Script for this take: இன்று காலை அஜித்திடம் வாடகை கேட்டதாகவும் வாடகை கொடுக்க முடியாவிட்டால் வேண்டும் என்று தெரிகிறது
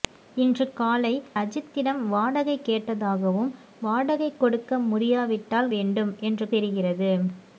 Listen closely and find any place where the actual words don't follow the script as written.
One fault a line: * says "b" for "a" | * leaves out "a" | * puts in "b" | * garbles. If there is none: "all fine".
all fine